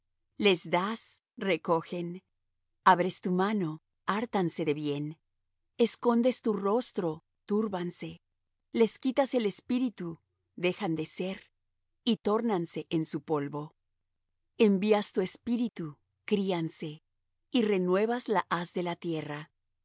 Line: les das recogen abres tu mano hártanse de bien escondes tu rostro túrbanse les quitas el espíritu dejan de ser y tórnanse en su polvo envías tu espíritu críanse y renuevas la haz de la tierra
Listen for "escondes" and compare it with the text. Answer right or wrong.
right